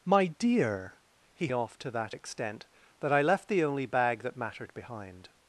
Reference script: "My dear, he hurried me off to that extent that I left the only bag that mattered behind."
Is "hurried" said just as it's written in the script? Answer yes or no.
no